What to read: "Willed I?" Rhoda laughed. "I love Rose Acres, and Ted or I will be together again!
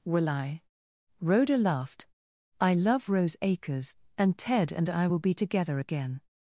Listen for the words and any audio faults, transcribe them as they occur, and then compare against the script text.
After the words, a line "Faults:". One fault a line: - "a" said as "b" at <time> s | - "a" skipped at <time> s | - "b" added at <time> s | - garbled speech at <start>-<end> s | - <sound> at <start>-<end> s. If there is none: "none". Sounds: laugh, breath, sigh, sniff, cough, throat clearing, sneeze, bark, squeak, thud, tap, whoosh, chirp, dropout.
"Will I?" Rhoda laughed. "I love Rose Acres, and Ted and I will be together again!
Faults:
- "Willed" said as "Will" at 0.0 s
- "or" said as "and" at 4.7 s